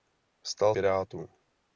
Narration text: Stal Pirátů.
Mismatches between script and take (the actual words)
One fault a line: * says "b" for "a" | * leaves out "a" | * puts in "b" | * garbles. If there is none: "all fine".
all fine